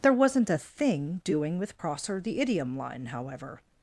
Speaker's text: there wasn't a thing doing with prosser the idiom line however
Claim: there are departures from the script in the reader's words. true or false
false